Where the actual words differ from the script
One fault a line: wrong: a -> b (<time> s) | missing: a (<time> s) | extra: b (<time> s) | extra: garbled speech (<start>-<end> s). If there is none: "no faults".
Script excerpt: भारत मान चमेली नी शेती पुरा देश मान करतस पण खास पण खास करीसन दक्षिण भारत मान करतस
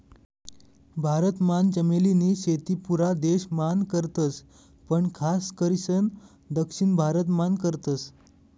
missing: पण खास (5.5 s)